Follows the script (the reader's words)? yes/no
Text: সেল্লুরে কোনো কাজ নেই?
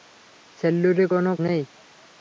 no